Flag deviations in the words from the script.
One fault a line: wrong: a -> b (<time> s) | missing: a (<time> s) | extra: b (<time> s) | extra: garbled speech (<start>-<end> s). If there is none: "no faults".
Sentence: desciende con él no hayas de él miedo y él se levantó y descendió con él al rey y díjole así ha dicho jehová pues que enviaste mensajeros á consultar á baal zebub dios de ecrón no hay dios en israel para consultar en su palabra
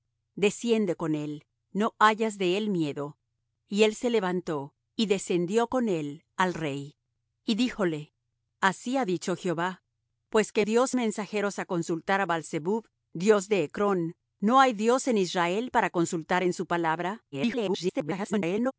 wrong: enviaste -> dios (10.6 s)
extra: garbled speech (17.3-18.7 s)